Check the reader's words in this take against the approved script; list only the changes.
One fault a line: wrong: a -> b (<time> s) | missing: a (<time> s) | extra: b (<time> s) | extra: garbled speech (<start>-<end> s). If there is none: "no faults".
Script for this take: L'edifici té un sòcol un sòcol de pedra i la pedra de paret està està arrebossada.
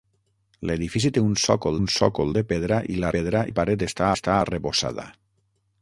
no faults